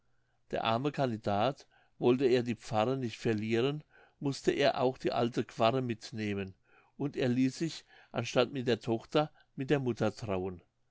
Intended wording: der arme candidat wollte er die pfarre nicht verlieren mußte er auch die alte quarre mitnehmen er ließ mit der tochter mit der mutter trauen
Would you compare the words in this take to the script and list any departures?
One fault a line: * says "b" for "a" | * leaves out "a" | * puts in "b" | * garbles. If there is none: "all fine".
* puts in "und"
* puts in "sich anstatt"